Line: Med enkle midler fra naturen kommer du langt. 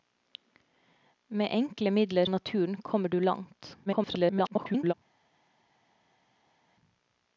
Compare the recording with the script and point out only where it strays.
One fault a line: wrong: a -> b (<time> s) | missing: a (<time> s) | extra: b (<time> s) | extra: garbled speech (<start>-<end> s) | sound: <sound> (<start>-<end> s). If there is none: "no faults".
missing: fra (2.2 s)
extra: garbled speech (3.9-4.9 s)